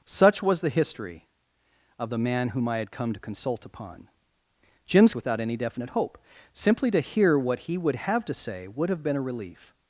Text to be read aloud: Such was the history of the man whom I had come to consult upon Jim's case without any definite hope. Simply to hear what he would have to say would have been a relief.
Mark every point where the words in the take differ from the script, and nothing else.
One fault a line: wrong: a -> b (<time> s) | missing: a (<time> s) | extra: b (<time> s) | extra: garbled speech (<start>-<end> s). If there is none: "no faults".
missing: case (5.1 s)